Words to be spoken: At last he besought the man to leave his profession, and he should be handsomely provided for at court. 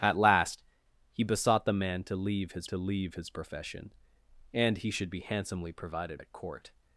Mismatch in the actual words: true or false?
true